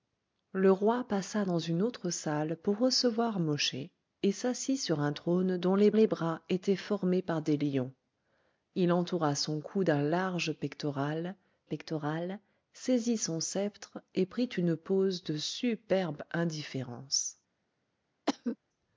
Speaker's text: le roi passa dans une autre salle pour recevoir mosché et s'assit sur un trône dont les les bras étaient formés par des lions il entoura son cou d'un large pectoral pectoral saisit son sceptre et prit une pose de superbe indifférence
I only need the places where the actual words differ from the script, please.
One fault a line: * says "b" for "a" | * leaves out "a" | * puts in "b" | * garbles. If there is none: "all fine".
all fine